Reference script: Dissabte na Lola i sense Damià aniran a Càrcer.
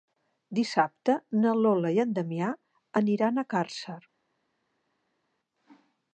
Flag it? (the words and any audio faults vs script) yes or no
yes